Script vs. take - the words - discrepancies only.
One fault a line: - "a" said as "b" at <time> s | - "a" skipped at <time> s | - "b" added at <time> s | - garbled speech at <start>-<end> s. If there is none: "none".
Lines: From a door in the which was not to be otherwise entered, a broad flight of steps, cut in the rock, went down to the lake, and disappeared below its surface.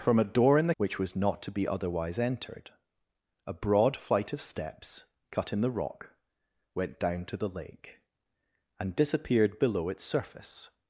none